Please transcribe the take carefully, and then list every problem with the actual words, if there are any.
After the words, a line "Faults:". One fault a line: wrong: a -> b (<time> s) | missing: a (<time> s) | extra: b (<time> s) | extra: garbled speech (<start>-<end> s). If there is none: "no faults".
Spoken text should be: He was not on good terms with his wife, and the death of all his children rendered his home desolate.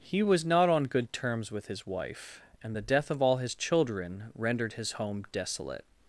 He was not on good terms with his wife, and the death of all his children rendered his home desolate.
Faults:
no faults